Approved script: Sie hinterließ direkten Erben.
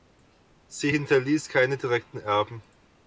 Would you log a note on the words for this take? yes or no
yes